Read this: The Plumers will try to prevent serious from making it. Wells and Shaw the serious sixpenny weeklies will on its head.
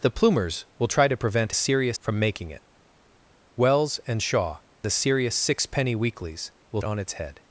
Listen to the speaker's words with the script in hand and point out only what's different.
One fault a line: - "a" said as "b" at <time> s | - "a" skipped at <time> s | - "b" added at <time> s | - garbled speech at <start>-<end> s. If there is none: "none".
none